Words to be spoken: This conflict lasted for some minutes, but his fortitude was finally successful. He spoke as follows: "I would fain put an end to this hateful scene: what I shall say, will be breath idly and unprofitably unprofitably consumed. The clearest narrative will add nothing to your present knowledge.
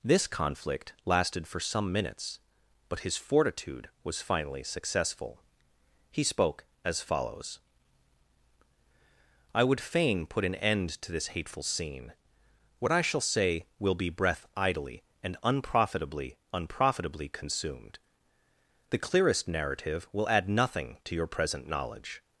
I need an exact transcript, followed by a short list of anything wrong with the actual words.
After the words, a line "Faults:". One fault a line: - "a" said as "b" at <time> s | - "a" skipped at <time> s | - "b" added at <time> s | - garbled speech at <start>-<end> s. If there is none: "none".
This conflict lasted for some minutes, but his fortitude was finally successful. He spoke as follows: "I would fain put an end to this hateful scene: what I shall say, will be breath idly and unprofitably unprofitably consumed. The clearest narrative will add nothing to your present knowledge.
Faults:
none